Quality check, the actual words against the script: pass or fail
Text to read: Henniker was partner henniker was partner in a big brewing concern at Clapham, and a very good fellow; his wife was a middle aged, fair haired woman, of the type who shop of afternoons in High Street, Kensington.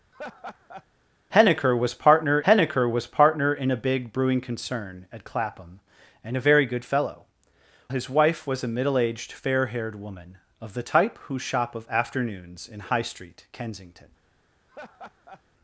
pass